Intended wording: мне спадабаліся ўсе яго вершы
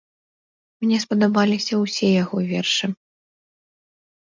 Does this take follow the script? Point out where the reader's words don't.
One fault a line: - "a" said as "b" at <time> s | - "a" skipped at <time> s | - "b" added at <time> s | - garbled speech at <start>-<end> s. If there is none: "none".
none